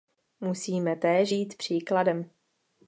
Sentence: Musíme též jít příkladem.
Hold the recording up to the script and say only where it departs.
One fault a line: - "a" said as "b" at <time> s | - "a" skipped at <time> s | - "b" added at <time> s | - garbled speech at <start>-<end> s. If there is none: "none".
none